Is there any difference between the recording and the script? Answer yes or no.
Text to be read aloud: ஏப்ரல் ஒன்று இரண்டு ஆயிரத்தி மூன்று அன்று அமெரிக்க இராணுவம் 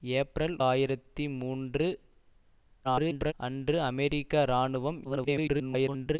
yes